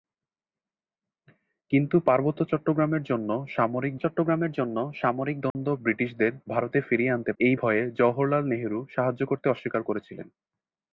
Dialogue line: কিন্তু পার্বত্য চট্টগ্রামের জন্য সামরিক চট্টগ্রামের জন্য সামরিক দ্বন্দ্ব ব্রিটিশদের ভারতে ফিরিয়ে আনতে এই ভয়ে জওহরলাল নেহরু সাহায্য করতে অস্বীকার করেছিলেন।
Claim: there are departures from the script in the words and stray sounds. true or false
true